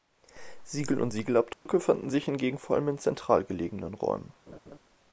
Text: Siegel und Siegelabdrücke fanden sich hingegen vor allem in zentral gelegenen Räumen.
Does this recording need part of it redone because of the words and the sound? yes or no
yes